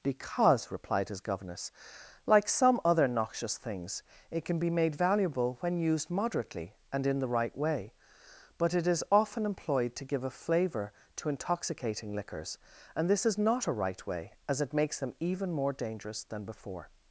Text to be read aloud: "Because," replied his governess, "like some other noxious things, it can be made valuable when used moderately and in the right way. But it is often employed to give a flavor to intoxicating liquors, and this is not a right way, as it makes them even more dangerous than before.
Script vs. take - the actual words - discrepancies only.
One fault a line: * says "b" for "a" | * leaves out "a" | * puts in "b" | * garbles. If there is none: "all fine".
all fine